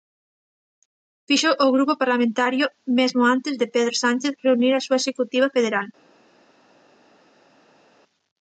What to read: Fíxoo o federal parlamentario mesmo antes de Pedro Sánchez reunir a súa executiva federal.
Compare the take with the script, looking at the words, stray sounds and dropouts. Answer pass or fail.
fail